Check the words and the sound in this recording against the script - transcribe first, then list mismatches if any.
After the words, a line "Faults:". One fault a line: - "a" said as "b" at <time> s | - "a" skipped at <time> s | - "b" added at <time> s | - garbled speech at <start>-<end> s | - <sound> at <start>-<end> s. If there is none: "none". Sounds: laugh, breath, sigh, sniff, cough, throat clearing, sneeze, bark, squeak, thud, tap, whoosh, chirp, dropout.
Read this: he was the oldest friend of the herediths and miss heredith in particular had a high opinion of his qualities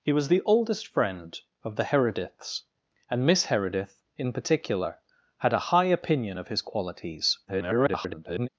he was the oldest friend of the herediths and miss heredith in particular had a high opinion of his qualities [garbled]
Faults:
- garbled speech at 7.5-8.5 s